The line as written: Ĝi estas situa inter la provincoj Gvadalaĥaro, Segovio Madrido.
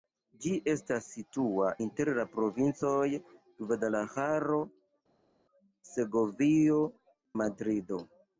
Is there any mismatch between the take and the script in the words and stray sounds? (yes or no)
no